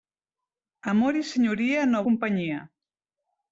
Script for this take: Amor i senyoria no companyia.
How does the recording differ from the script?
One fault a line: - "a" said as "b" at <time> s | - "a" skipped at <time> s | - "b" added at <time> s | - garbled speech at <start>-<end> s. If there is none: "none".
none